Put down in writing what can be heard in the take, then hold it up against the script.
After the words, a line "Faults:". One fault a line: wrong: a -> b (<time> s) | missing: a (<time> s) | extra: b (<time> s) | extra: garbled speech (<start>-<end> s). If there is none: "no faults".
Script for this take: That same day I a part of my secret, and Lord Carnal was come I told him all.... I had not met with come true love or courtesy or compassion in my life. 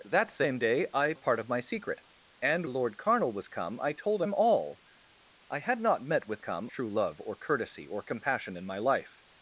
That same day I a part of my secret, and Lord Carnal was come I told him all.... I had not met with come true love or courtesy or compassion in my life.
Faults:
no faults